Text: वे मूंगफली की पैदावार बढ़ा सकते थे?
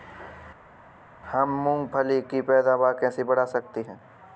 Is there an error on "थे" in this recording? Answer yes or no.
yes